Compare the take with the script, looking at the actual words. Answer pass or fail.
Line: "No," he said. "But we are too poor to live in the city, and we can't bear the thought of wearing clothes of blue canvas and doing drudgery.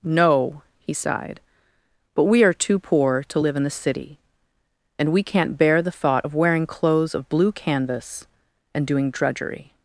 fail